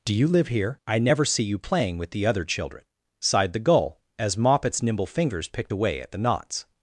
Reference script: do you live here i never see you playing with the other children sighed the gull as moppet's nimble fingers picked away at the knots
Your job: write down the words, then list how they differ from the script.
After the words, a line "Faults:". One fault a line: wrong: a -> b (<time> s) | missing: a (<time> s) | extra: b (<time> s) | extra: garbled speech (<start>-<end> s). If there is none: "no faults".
do you live here i never see you playing with the other children sighed the gull as moppet's nimble fingers picked away at the knots
Faults:
no faults